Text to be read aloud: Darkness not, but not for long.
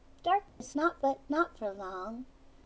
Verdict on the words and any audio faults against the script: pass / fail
fail